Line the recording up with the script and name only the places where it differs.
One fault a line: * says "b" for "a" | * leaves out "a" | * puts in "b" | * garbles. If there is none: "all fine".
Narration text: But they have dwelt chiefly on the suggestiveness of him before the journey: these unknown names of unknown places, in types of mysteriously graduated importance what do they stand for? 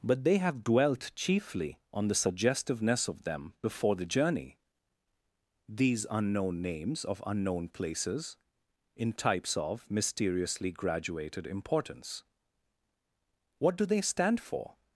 * says "them" for "him"